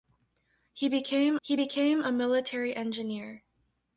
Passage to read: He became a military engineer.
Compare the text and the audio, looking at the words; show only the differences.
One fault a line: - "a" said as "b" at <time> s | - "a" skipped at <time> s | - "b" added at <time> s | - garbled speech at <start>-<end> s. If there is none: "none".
- "he became" added at 1.4 s